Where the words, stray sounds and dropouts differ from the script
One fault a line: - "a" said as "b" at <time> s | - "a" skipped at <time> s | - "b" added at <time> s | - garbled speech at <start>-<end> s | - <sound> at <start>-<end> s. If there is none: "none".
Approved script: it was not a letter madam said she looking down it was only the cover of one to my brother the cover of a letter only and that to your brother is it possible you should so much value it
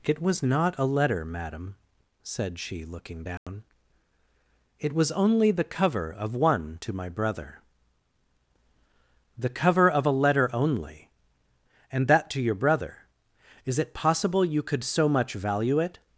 - dropout at 3.4-3.5 s
- "should" said as "could" at 14.6 s